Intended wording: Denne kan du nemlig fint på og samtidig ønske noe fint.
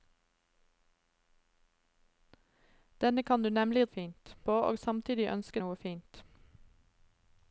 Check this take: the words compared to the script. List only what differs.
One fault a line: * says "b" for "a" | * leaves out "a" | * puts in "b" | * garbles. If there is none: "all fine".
all fine